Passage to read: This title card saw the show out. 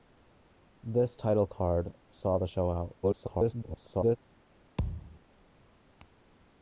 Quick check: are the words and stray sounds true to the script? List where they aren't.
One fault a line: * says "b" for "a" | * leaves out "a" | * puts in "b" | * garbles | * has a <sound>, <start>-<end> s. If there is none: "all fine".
* garbles
* has a thud, 4.8-5.2 s